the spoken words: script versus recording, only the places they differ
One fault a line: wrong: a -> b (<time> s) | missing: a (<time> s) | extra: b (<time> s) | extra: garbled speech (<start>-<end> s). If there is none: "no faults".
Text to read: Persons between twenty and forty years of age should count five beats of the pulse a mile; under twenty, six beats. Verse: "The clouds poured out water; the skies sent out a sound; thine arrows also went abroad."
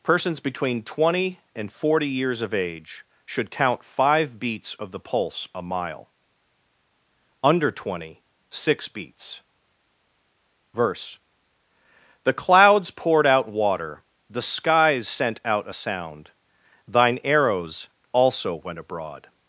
no faults